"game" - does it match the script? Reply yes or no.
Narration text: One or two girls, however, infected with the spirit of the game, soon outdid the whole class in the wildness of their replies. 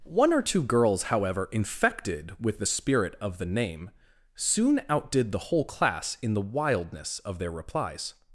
no